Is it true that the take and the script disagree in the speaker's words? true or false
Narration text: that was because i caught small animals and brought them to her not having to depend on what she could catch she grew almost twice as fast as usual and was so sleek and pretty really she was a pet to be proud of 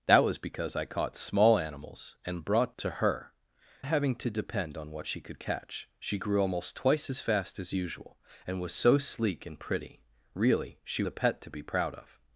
true